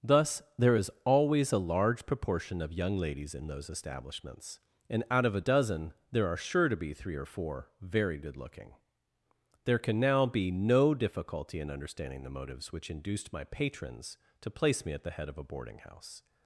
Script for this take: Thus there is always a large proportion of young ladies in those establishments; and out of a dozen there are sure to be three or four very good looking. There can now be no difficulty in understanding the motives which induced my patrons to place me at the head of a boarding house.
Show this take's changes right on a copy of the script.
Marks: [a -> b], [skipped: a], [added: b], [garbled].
Thus there is always a large proportion of young ladies in those establishments; and out of a dozen there are sure to be three or four very good looking. There can now be no difficulty in understanding the motives which induced my patrons to place me at the head of a boarding house.